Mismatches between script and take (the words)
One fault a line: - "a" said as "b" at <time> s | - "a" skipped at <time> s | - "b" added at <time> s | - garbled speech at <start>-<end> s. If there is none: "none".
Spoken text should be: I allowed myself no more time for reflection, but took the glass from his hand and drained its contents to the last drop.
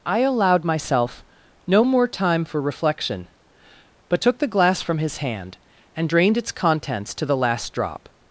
none